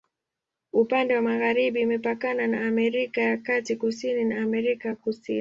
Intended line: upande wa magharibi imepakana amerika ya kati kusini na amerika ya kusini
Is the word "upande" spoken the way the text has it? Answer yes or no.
yes